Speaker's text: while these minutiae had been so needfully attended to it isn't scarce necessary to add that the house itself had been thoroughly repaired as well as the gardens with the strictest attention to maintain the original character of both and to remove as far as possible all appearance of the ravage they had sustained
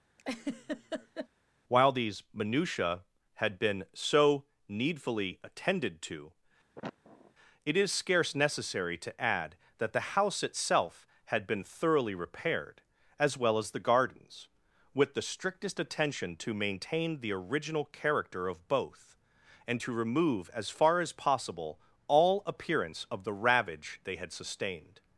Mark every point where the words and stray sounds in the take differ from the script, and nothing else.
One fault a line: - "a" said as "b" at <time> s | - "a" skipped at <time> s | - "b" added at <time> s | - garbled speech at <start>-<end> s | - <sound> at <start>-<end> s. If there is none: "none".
- laugh at 0.2-1.3 s
- sniff at 6.7-7.3 s
- "isn't" said as "is" at 7.8 s